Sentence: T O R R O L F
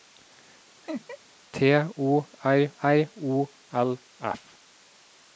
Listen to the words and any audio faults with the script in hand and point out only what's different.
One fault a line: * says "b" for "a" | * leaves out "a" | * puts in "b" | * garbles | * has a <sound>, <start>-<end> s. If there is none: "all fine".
* has a laugh, 0.8-1.2 s